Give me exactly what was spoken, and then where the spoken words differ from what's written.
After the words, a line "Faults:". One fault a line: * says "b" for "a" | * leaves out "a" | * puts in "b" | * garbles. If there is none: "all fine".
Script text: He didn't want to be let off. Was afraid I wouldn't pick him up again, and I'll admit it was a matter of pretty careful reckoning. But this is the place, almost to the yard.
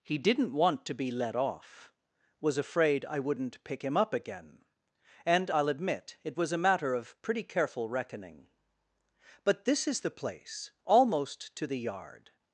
He didn't want to be let off. Was afraid I wouldn't pick him up again, and I'll admit it was a matter of pretty careful reckoning. But this is the place, almost to the yard.
Faults:
all fine